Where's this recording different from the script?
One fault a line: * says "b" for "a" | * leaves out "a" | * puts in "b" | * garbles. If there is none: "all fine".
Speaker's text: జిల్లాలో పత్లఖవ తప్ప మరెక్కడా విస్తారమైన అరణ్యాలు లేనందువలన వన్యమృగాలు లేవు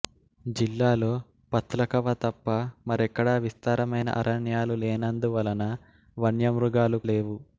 all fine